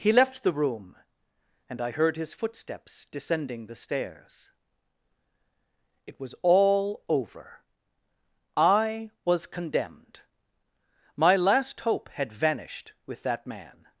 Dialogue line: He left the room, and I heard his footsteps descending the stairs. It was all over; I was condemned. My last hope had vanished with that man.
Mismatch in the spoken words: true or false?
false